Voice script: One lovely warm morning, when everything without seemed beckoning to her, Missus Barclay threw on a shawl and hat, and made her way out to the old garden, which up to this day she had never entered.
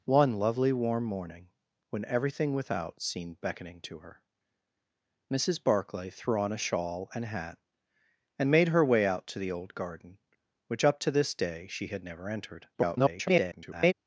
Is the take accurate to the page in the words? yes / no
no